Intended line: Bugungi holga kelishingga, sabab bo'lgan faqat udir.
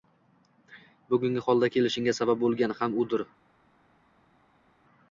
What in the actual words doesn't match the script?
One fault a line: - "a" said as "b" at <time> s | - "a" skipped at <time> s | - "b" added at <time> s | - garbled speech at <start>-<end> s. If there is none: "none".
- "faqat" said as "ham" at 2.8 s